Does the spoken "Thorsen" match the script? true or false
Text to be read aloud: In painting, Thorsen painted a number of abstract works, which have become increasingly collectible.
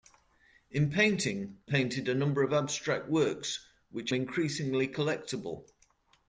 false